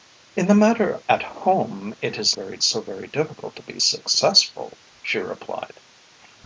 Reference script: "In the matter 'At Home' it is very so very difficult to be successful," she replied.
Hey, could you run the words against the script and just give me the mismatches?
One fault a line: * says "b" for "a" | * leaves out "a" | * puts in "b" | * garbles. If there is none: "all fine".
all fine